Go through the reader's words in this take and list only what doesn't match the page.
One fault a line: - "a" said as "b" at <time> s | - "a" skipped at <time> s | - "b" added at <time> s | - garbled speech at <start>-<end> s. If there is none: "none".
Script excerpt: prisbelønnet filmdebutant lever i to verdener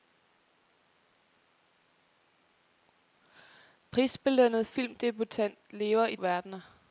- "to" skipped at 6.2 s